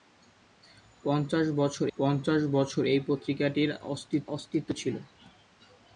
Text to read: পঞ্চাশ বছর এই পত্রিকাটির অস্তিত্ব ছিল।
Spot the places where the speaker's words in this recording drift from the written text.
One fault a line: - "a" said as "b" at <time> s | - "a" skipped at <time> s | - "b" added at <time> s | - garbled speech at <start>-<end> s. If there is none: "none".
- "পঞ্চাশ বছর" added at 2.0 s
- "অস্তিত্ব" added at 4.4 s